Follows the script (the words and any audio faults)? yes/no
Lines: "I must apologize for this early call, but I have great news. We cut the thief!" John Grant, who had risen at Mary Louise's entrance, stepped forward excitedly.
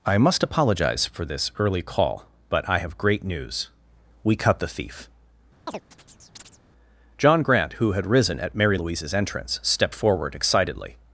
no